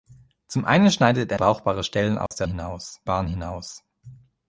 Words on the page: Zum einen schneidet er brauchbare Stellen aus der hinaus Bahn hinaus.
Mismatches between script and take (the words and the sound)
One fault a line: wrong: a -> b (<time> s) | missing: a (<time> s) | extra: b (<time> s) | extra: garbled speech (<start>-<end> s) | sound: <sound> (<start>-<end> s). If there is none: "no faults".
sound: dropout (2.3-2.3 s)